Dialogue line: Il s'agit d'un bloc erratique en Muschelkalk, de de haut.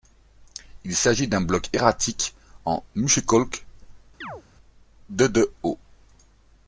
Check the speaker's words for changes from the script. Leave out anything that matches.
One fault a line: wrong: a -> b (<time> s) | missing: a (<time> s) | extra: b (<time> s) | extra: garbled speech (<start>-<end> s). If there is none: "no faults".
no faults